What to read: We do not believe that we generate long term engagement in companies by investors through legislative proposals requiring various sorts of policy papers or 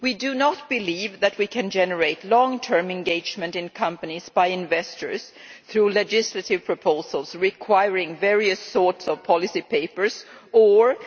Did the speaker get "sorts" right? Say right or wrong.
right